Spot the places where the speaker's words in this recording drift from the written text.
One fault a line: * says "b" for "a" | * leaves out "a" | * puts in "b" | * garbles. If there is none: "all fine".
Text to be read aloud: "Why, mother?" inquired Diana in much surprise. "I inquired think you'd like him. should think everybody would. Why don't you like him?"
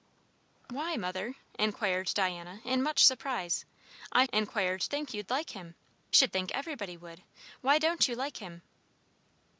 all fine